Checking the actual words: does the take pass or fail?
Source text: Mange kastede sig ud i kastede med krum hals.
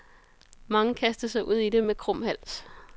fail